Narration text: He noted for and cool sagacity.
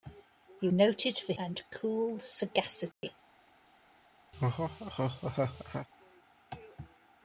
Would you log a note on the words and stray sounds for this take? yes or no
yes